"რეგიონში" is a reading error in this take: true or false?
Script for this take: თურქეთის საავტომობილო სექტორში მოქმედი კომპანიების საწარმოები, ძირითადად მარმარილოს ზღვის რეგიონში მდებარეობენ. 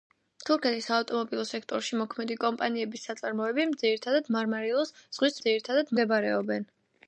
true